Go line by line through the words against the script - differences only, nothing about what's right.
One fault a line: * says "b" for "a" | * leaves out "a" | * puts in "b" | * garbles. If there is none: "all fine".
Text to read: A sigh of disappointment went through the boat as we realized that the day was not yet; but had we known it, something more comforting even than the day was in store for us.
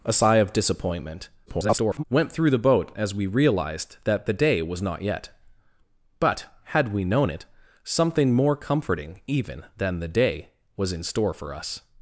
* garbles